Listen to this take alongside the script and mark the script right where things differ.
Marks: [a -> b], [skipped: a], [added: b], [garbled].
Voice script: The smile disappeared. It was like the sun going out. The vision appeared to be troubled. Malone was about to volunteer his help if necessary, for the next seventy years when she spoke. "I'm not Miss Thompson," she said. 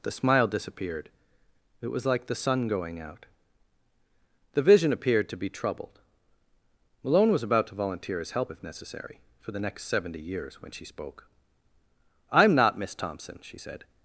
The smile disappeared. It was like the sun going out. The vision appeared to be troubled. Malone was about to volunteer his help if necessary, for the next seventy years when she spoke. "I'm not Miss Thompson," she said.